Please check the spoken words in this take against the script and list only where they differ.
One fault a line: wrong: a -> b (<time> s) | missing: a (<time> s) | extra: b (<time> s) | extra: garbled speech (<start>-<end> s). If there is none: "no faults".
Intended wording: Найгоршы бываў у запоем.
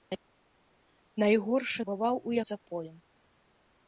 no faults